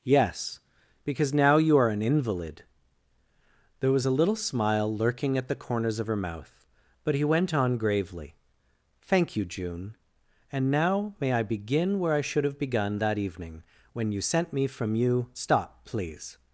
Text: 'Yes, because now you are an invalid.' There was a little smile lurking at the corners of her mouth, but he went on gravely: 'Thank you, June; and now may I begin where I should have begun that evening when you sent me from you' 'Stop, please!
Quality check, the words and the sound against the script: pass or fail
pass